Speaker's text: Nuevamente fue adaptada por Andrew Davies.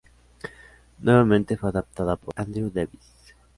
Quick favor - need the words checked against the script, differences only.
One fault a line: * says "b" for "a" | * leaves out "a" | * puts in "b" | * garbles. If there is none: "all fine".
all fine